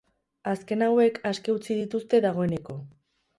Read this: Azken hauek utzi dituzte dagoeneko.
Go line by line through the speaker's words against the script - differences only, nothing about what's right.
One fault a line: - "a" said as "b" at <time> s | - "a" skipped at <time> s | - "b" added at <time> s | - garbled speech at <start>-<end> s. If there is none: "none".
- "aske" added at 1.3 s